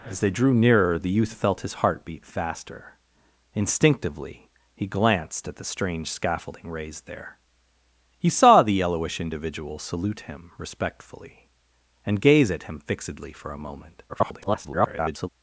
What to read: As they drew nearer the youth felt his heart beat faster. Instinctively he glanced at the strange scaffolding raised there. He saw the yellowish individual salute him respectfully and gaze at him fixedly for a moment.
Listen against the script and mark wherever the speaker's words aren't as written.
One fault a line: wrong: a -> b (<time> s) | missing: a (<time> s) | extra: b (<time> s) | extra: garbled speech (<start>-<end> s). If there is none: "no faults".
extra: garbled speech (14.1-15.3 s)